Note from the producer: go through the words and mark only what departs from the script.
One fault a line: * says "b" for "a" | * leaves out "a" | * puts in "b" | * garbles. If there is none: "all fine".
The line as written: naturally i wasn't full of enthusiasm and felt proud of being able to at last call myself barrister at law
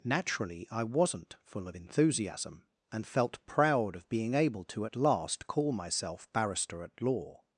all fine